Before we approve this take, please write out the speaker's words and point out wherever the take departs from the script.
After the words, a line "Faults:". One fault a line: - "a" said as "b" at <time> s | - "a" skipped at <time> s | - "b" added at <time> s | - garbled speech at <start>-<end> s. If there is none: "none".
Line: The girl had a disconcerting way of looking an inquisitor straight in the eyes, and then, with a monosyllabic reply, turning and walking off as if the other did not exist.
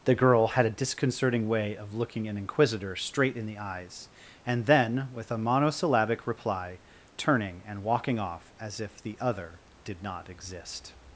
The girl had a disconcerting way of looking an inquisitor straight in the eyes, and then, with a monosyllabic reply, turning and walking off as if the other did not exist.
Faults:
none